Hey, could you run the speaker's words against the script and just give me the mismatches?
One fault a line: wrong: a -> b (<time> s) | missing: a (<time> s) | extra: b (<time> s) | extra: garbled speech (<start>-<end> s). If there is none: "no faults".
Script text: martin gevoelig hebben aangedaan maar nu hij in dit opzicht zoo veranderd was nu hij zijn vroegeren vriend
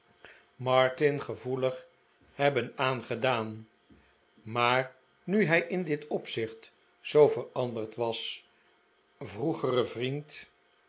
missing: nu hij zijn (8.5 s)